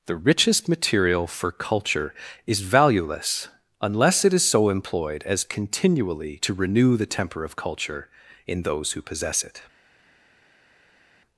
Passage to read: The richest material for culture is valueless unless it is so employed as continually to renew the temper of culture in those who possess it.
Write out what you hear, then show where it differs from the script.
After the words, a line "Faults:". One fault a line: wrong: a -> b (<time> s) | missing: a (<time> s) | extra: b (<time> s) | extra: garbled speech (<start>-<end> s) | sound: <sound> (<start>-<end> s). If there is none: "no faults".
The richest material for culture is valueless unless it is so employed as continually to renew the temper of culture in those who possess it.
Faults:
no faults